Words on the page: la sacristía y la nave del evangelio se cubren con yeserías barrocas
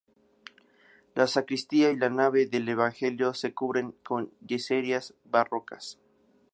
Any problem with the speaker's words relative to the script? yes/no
no